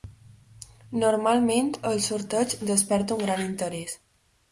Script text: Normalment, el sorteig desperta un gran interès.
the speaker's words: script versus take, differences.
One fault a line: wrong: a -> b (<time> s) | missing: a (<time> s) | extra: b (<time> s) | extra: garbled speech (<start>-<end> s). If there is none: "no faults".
no faults